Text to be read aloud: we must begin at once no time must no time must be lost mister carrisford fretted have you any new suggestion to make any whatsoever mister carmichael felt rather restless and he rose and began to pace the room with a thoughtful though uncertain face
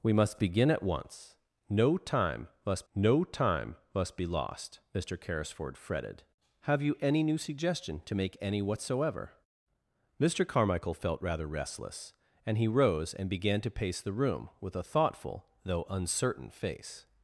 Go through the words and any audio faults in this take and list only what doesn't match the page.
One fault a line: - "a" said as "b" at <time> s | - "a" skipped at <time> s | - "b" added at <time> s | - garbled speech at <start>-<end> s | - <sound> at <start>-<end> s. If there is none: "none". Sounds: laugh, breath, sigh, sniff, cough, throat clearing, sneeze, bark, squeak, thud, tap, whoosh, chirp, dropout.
none